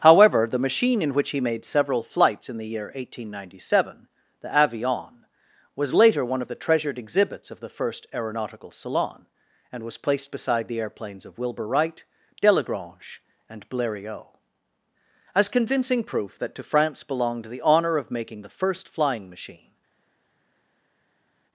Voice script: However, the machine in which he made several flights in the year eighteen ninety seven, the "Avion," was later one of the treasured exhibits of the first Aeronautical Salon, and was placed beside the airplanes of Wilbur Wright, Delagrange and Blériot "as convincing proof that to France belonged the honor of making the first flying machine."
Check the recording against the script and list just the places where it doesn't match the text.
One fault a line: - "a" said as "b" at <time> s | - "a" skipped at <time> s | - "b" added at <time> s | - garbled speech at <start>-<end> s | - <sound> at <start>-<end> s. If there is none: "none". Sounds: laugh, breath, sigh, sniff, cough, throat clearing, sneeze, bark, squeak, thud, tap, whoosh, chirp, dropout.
none